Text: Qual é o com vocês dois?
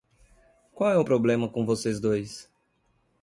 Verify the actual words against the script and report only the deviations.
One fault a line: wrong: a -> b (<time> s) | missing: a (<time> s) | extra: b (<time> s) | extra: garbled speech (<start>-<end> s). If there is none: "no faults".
extra: problema (1.0 s)